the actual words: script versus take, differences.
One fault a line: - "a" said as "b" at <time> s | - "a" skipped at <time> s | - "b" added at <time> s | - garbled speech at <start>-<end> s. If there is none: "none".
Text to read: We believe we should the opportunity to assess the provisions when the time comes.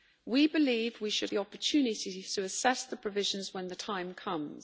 none